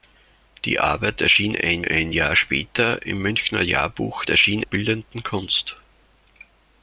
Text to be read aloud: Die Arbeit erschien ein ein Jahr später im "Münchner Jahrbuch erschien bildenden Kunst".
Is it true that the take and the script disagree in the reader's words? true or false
false